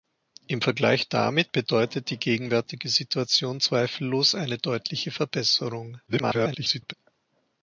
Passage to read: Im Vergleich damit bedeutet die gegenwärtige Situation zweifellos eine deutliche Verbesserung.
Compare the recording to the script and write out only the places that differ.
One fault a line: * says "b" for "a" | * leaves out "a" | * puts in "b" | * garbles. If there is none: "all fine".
* garbles